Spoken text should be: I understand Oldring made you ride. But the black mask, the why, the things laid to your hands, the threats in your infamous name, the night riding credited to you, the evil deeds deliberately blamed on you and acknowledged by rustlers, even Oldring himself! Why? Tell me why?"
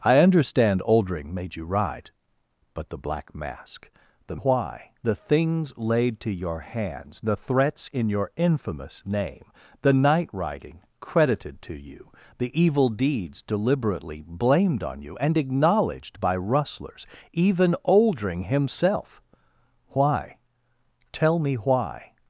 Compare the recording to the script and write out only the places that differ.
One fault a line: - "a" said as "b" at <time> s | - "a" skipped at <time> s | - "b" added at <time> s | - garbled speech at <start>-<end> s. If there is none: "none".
none